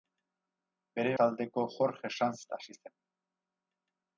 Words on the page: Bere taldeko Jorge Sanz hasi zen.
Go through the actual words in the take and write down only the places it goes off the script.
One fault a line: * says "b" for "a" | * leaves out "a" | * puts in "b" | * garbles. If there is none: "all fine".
all fine